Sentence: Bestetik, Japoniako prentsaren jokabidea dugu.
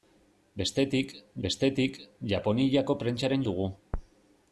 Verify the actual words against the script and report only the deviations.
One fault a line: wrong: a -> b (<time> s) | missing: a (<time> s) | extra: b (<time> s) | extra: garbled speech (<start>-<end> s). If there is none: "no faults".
extra: bestetik (1.5 s)
missing: jokabidea (3.5 s)